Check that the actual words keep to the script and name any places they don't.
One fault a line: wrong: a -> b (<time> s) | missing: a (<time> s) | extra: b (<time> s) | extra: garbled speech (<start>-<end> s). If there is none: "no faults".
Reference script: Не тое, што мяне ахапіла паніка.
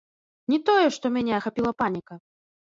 no faults